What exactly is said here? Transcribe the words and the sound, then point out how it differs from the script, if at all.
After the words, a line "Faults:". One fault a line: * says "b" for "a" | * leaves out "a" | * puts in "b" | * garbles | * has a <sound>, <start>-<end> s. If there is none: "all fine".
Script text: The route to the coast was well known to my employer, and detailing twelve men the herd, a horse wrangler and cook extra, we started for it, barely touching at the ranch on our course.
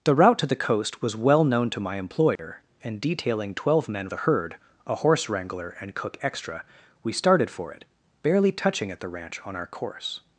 The route to the coast was well known to my employer, and detailing twelve men the herd, a horse wrangler and cook extra, we started for it, barely touching at the ranch on our course.
Faults:
* has a dropout, 2.4-2.4 s